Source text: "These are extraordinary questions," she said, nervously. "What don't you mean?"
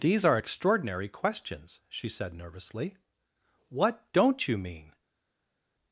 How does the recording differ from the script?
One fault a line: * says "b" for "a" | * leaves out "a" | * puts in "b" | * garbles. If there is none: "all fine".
all fine